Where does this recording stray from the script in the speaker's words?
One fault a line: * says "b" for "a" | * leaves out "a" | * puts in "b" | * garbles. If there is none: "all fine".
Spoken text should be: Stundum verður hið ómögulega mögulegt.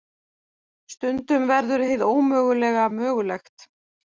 all fine